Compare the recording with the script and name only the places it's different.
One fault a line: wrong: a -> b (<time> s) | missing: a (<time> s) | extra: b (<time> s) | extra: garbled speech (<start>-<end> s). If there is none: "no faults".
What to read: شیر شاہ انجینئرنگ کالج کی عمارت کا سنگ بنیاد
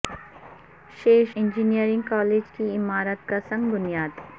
missing: شاہ (1.2 s)